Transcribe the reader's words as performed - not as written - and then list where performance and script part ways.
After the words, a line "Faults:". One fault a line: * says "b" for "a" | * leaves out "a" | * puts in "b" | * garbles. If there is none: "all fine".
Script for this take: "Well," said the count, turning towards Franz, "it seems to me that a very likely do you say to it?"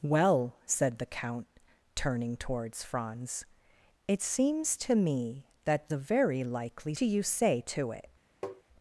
"Well," said the count, turning towards Franz, "it seems to me that a very likely do you say to it?"
Faults:
all fine